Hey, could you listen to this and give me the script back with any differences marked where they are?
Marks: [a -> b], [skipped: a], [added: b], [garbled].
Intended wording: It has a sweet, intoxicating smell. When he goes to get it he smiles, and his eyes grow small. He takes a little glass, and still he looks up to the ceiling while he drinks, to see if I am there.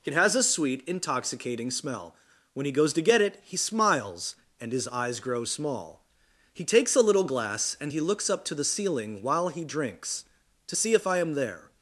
It has a sweet, intoxicating smell. When he goes to get it he smiles, and his eyes grow small. He takes a little glass, and [skipped: still] he looks up to the ceiling while he drinks, to see if I am there.